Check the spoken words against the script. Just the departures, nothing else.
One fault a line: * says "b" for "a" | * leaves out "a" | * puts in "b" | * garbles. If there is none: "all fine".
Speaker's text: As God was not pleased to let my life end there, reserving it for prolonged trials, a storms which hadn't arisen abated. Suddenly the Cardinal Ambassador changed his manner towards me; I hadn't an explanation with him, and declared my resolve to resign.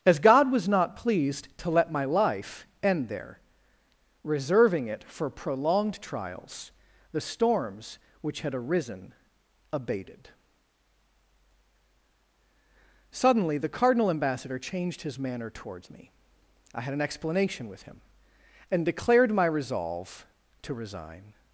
* says "the" for "a"
* says "had" for "hadn't"
* says "had" for "hadn't"